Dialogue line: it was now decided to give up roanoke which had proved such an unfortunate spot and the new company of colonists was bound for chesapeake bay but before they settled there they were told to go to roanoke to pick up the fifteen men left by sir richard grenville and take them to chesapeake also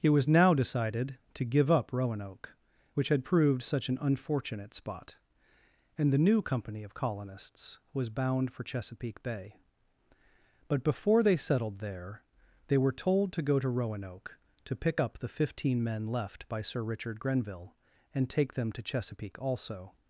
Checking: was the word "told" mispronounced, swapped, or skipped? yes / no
no